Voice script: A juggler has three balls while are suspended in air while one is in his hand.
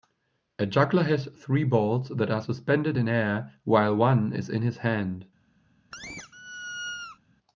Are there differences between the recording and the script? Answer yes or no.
yes